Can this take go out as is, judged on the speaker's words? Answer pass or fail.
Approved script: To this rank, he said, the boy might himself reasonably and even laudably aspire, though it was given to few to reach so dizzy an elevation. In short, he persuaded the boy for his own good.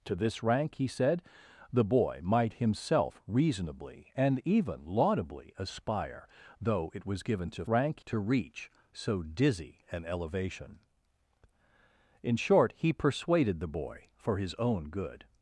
fail